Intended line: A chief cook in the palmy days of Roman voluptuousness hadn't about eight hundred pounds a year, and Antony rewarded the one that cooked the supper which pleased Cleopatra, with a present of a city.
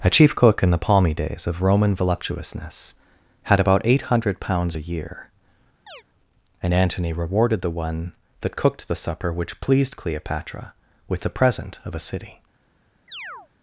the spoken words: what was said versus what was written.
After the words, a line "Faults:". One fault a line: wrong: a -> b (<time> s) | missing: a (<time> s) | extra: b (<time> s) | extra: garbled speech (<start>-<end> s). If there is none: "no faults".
A chief cook in the palmy days of Roman voluptuousness had about eight hundred pounds a year, and Antony rewarded the one that cooked the supper which pleased Cleopatra, with the present of a city.
Faults:
wrong: hadn't -> had (3.4 s)
wrong: a -> the (11.2 s)